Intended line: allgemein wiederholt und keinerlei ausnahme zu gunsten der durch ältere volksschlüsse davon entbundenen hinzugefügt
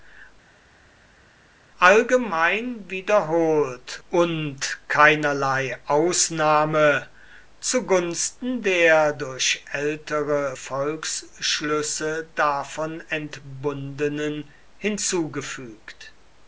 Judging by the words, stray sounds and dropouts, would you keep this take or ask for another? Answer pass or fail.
pass